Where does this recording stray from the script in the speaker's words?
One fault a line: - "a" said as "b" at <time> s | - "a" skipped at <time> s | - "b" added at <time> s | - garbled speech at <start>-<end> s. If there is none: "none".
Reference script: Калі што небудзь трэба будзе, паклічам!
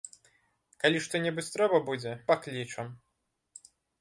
none